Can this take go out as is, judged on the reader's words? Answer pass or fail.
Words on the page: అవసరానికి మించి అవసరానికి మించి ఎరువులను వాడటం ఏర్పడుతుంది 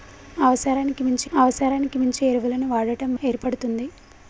pass